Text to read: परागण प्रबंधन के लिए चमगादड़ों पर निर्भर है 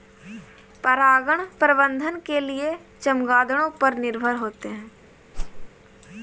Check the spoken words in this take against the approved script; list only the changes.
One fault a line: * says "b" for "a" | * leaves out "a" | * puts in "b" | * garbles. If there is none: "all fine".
* puts in "होते"